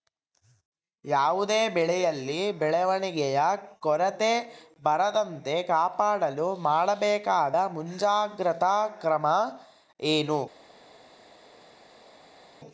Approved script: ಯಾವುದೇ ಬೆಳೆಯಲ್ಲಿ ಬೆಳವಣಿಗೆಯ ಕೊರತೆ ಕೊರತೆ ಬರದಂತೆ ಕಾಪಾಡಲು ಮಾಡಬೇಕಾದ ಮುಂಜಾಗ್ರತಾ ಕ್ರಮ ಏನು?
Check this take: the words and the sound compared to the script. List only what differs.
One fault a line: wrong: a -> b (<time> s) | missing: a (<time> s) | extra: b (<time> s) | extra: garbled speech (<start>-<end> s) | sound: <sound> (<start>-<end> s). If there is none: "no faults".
missing: ಕೊರತೆ (4.3 s)